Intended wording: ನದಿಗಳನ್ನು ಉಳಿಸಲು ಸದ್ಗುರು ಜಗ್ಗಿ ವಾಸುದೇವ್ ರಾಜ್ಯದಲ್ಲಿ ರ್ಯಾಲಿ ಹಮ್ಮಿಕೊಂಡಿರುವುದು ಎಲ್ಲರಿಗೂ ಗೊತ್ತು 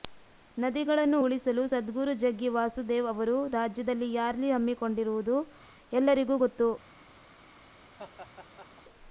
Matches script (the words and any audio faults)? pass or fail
fail